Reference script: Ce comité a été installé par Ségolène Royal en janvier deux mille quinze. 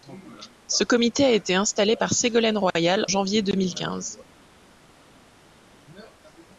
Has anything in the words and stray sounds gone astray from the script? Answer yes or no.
yes